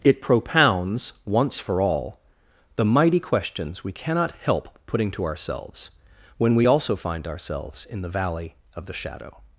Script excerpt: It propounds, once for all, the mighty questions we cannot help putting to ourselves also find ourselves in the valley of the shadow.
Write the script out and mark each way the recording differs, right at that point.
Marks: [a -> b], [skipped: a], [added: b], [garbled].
It propounds, once for all, the mighty questions we cannot help putting to ourselves [added: when we] also find ourselves in the valley of the shadow.